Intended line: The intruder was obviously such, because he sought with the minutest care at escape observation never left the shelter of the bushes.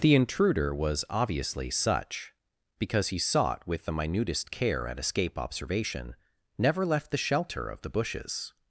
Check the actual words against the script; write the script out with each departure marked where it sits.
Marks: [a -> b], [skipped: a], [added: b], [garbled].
The intruder was obviously such, because he sought with the minutest care at escape observation never left the shelter of the bushes.